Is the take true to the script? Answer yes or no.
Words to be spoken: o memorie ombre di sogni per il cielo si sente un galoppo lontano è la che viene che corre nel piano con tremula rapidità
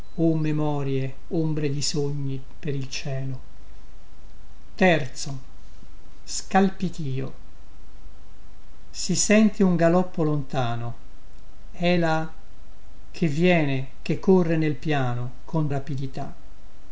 no